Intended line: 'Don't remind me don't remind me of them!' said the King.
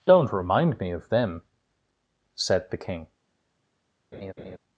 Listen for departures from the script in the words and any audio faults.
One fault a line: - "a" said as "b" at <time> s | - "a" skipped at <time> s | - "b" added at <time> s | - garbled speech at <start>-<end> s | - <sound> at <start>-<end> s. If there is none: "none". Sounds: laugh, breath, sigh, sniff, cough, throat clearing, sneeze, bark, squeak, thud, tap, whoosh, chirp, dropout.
- "don't remind me" skipped at 0.9 s
- laugh at 4.1-4.6 s